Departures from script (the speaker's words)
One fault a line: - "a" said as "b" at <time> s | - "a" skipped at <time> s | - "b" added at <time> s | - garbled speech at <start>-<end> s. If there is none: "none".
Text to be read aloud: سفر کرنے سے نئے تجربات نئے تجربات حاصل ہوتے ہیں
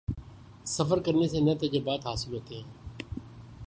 - "نئے تجربات" skipped at 2.0 s